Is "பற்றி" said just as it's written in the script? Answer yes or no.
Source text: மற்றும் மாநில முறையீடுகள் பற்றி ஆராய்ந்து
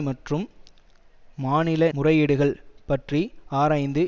yes